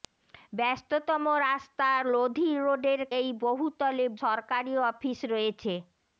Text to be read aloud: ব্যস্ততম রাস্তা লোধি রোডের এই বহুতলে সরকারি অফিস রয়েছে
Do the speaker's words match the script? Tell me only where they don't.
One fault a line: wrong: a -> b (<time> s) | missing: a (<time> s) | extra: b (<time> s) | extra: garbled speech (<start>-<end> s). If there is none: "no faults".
no faults